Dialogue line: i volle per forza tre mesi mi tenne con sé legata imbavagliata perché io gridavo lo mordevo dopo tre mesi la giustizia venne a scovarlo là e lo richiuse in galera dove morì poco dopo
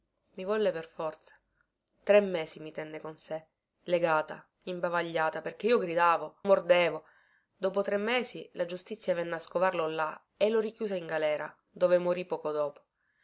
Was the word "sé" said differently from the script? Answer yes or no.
no